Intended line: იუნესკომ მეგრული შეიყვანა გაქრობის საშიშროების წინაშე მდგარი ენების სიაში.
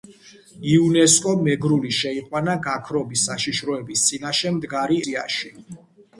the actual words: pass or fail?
fail